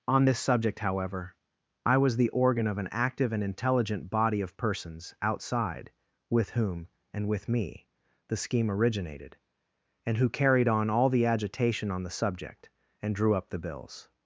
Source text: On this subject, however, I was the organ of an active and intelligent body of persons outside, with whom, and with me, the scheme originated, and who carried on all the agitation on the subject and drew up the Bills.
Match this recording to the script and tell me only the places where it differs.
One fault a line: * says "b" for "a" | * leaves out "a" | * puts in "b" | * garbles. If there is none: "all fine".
all fine